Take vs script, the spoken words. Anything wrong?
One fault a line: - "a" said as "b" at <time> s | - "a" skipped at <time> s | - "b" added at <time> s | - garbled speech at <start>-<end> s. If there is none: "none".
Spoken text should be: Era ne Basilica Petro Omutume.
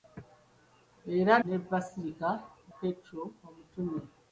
none